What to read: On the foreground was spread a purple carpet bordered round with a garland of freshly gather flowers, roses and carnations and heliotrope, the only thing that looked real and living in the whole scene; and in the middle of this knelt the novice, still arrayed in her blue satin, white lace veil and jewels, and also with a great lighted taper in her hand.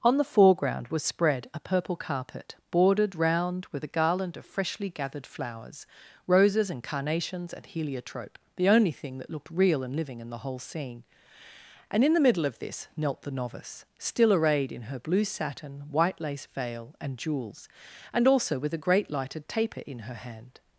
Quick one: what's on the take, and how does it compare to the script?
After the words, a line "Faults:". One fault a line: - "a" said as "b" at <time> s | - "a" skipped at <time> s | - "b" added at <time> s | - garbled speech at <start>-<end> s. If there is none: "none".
On the foreground was spread a purple carpet bordered round with a garland of freshly gathered flowers, roses and carnations and heliotrope, the only thing that looked real and living in the whole scene; and in the middle of this knelt the novice, still arrayed in her blue satin, white lace veil and jewels, and also with a great lighted taper in her hand.
Faults:
- "gather" said as "gathered" at 4.9 s